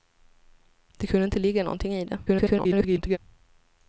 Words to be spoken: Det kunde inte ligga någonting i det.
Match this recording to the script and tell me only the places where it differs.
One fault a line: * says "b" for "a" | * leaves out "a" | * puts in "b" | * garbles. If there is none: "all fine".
* garbles